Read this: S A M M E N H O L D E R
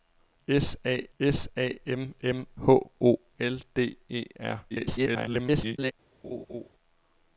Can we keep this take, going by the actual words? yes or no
no